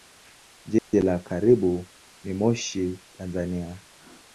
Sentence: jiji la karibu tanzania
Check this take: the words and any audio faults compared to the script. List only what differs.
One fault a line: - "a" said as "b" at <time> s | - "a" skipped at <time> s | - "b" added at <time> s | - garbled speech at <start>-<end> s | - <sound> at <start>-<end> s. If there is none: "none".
- dropout at 0.8-0.9 s
- "ni moshi" added at 2.2 s